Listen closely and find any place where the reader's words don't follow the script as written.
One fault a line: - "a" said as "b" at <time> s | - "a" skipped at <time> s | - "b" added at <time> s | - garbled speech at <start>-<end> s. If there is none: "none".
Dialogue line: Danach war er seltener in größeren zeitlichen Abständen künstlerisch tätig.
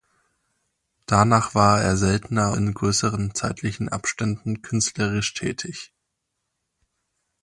none